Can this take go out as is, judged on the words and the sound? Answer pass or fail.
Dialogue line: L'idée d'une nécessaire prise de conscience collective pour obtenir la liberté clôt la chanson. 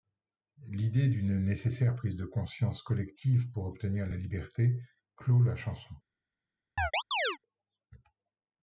fail